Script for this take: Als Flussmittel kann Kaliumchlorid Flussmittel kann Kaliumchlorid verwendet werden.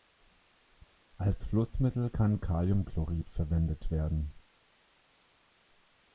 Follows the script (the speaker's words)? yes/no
no